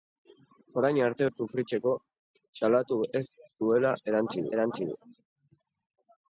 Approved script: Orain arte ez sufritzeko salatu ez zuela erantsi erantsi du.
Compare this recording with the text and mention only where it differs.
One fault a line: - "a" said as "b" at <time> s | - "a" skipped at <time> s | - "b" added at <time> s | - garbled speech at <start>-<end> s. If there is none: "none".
none